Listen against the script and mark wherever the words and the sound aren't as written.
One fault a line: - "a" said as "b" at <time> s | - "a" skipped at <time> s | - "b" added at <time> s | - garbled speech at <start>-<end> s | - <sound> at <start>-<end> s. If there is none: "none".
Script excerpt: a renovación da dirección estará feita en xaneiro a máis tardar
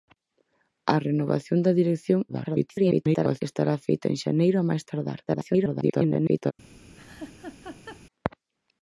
- garbled speech at 2.3-3.4 s
- garbled speech at 5.3-6.5 s
- laugh at 7.0-8.1 s